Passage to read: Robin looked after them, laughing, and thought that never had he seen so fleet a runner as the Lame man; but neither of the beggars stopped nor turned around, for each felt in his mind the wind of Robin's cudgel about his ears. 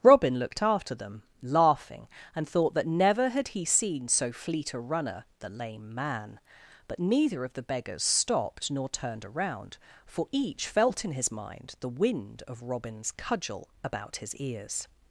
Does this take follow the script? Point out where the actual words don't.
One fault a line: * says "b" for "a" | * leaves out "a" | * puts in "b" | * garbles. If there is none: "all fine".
* leaves out "as"